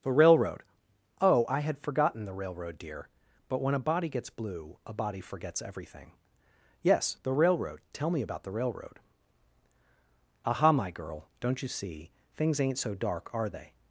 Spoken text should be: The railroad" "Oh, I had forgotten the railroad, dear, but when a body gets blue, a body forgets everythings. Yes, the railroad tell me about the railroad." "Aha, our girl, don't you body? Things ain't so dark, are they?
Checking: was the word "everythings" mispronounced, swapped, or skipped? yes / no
yes